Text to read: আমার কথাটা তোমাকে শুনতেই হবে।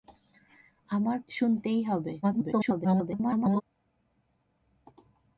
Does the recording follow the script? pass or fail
fail